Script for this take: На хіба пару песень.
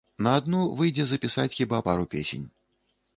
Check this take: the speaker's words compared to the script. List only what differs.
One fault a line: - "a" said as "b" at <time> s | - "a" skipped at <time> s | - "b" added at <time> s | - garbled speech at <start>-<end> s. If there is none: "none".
- "адну выйдзе запісаць" added at 0.4 s